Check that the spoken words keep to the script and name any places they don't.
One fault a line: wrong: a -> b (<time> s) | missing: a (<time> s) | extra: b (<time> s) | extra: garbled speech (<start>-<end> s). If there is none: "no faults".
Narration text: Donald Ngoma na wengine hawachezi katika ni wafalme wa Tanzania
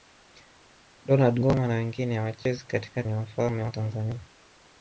no faults